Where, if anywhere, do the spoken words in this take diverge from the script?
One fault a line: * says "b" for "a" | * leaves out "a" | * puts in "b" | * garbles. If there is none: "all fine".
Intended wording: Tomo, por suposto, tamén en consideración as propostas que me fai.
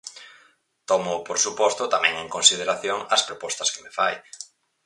all fine